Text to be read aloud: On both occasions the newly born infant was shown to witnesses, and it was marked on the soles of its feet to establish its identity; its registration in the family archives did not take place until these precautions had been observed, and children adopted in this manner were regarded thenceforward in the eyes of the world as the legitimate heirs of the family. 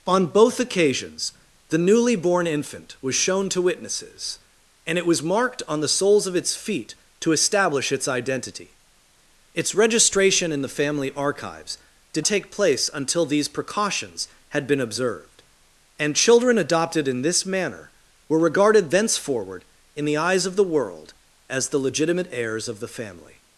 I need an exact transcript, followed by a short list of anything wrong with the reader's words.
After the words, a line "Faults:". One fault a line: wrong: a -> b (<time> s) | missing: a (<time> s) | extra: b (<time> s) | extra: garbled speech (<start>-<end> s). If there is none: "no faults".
On both occasions the newly born infant was shown to witnesses, and it was marked on the soles of its feet to establish its identity; its registration in the family archives did take place until these precautions had been observed, and children adopted in this manner were regarded thenceforward in the eyes of the world as the legitimate heirs of the family.
Faults:
missing: not (12.2 s)